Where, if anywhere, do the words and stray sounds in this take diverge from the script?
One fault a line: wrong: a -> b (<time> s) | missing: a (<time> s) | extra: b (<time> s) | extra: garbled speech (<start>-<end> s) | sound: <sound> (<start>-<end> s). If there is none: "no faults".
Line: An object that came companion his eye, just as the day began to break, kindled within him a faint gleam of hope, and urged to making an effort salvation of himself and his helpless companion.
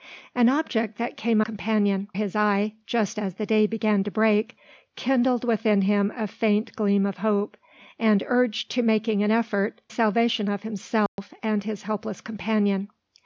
sound: dropout (11.1-11.2 s)